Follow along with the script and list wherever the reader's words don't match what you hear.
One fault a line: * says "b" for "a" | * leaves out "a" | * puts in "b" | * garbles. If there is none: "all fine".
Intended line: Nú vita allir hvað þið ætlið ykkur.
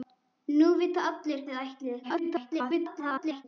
* leaves out "hvað"
* garbles